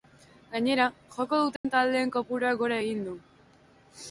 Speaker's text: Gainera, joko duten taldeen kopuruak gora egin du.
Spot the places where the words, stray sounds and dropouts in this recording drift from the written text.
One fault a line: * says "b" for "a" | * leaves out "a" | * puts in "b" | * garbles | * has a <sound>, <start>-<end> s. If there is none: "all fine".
* has a dropout, 1.6-1.6 s